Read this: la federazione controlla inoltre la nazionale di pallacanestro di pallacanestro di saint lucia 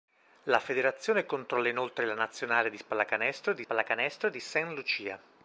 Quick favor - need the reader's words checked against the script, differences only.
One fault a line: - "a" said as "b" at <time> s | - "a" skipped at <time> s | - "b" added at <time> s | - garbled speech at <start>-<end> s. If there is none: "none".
none